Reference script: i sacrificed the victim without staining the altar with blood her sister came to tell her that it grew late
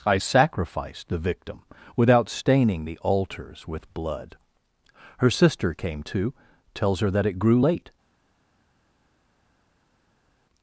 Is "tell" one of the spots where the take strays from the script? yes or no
yes